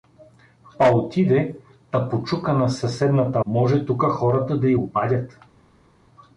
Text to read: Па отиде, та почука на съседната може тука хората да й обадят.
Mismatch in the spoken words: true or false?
false